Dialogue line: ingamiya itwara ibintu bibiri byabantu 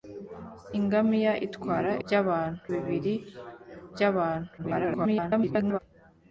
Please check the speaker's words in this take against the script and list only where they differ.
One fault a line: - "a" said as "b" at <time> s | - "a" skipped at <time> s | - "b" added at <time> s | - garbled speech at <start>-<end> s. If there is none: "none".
- "ibintu" said as "byabantu" at 2.0 s
- garbled speech at 4.6-5.8 s